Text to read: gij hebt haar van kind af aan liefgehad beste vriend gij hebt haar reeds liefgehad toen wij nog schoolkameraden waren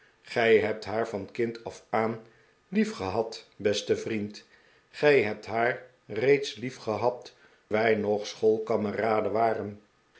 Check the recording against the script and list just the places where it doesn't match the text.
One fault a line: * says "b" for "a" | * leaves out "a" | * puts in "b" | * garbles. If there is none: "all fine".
* leaves out "toen"